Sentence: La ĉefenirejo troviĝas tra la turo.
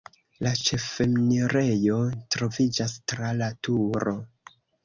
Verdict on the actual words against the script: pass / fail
pass